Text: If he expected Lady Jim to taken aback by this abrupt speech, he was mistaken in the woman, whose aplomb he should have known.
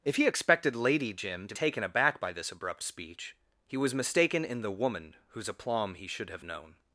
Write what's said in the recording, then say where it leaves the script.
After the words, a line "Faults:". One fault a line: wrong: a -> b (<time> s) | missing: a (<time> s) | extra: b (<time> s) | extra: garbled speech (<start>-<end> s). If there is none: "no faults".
If he expected Lady Jim to taken aback by this abrupt speech, he was mistaken in the woman, whose aplomb he should have known.
Faults:
no faults